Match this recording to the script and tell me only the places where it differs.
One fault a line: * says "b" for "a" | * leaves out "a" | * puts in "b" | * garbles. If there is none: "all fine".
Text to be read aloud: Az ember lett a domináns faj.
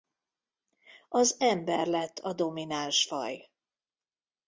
all fine